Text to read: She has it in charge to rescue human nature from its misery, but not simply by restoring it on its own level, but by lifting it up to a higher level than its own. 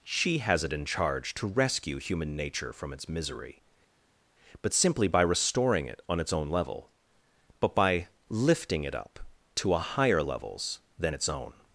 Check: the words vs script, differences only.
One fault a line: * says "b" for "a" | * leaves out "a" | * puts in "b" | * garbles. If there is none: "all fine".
* leaves out "not"
* says "levels" for "level"